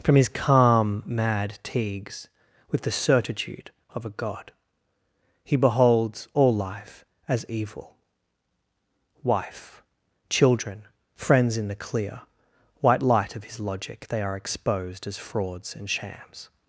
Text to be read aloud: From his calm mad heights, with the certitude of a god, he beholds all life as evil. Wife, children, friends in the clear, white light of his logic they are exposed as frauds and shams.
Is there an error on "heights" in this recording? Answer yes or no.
yes